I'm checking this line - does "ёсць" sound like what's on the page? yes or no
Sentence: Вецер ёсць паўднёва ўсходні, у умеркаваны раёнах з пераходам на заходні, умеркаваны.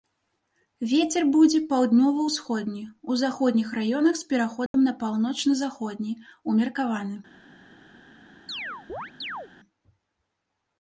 no